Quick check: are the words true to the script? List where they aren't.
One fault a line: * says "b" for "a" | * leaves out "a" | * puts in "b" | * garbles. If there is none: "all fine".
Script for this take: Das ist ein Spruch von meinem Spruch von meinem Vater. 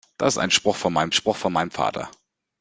all fine